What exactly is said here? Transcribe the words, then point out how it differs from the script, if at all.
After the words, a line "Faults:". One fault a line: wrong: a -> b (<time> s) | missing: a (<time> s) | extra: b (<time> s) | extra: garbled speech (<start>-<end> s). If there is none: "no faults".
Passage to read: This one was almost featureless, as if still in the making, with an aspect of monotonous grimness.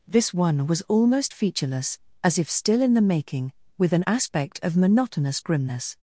This one was almost featureless, as if still in the making, with an aspect of monotonous grimness.
Faults:
no faults